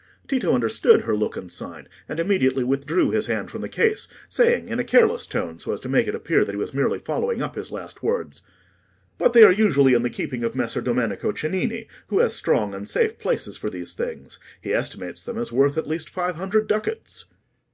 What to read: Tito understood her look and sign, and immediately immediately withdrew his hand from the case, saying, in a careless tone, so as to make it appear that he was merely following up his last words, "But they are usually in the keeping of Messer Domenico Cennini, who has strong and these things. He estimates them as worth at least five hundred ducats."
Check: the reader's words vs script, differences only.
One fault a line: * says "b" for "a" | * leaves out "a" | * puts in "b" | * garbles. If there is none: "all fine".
* leaves out "immediately"
* puts in "safe places for"